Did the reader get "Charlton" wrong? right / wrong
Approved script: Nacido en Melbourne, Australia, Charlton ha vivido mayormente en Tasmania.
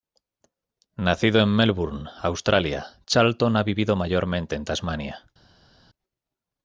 right